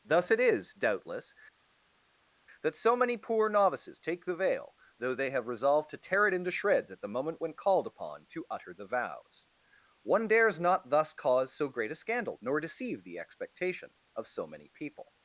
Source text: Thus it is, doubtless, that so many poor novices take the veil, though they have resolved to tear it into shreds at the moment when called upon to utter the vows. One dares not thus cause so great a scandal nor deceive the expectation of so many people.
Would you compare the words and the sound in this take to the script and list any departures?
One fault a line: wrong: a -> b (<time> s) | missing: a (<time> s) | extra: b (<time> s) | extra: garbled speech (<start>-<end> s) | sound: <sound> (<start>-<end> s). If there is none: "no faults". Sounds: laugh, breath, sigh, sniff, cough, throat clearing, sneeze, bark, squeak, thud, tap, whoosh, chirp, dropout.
no faults